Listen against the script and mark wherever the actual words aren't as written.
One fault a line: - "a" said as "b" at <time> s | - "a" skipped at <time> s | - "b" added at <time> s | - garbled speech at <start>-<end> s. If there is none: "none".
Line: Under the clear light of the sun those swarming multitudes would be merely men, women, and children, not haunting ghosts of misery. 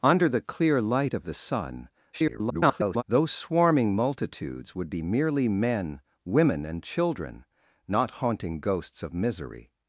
- garbled speech at 2.1-3.0 s